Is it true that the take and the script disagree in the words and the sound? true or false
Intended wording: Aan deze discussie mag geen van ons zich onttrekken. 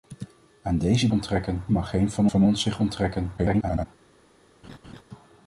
true